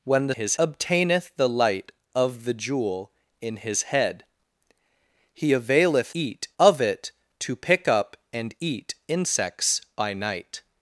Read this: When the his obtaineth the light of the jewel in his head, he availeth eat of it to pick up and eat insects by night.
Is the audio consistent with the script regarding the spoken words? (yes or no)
yes